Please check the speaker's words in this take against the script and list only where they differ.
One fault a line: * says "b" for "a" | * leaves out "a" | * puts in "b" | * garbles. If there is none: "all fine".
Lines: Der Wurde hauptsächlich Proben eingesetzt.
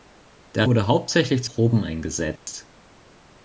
all fine